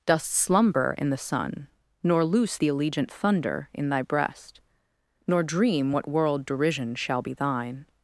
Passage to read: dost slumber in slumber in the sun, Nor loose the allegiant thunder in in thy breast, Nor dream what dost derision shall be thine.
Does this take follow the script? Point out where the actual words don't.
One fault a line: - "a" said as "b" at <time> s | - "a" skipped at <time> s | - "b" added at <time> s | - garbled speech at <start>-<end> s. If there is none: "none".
- "slumber in" skipped at 1.1 s
- "in" skipped at 3.9 s
- "dost" said as "world" at 6.1 s